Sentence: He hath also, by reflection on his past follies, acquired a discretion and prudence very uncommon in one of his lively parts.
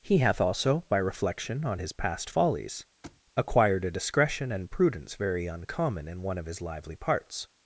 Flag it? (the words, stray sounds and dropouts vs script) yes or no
yes